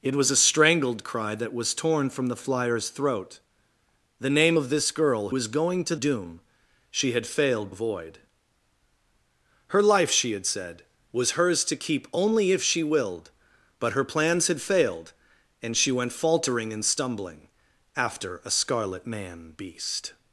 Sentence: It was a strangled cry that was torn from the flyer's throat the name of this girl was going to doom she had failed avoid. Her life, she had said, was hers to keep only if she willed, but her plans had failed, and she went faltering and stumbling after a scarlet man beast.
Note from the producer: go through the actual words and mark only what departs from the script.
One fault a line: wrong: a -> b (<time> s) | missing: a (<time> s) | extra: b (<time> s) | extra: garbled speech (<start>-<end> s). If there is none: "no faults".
no faults